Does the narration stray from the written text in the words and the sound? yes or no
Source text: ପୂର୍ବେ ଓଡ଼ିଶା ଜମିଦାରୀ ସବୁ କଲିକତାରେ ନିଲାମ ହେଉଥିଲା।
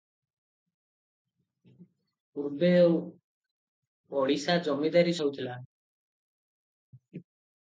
yes